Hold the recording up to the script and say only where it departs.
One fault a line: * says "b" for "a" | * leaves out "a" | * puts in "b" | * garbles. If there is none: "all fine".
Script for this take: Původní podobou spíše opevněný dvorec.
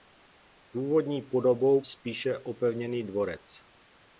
all fine